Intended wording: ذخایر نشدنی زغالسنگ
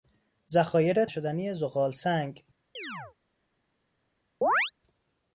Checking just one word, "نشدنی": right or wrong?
right